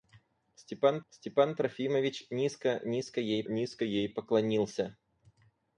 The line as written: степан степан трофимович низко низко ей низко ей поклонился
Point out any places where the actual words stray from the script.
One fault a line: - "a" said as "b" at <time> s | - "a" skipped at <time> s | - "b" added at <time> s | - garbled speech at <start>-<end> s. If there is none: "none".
none